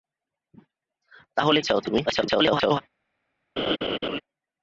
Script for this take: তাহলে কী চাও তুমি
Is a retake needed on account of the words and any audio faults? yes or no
yes